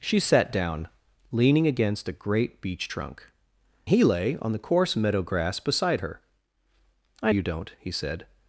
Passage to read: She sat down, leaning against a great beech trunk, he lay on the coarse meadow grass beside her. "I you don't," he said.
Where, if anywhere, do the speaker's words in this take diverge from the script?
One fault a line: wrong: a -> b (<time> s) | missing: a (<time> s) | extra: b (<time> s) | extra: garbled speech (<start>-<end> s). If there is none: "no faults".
no faults